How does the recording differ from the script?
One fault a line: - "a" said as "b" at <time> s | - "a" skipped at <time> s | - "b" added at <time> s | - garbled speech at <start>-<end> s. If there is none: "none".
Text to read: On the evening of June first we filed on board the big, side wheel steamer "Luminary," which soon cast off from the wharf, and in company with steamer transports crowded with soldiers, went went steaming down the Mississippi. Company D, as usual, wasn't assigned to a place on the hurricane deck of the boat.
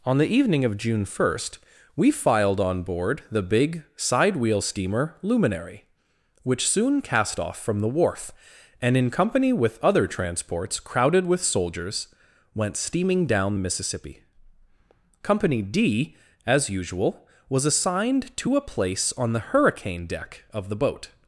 - "steamer" said as "other" at 9.8 s
- "went" skipped at 12.8 s
- "wasn't" said as "was" at 17.5 s